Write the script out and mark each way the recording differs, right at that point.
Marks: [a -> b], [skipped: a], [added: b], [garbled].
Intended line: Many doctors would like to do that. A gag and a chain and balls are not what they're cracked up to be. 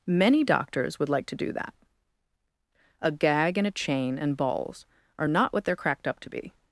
Many doctors would like to do that. A gag and a chain and balls are not what they're cracked up to be.